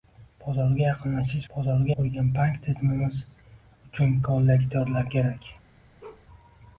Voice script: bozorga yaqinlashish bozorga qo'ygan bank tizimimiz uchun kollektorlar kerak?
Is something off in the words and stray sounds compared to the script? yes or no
yes